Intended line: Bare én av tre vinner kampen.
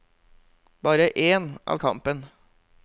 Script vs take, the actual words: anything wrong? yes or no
yes